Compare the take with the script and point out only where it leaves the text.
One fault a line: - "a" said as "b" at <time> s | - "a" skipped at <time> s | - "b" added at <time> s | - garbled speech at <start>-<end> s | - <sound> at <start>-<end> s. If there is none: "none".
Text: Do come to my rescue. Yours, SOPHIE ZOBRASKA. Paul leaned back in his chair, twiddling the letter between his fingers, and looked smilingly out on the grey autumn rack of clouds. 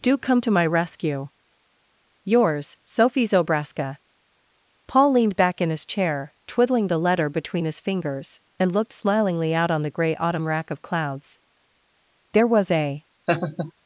- "There was a" added at 12.3 s
- laugh at 13.3-13.7 s